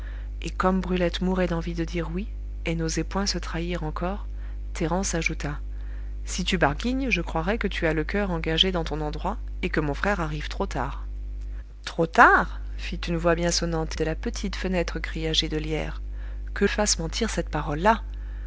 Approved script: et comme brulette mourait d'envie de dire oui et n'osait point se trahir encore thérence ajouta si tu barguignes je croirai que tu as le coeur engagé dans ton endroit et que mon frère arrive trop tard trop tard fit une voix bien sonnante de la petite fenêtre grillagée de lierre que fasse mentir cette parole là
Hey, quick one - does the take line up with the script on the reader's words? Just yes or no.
yes